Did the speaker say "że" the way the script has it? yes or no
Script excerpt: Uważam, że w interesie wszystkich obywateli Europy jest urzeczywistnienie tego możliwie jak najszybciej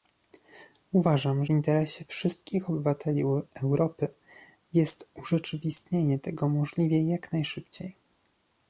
no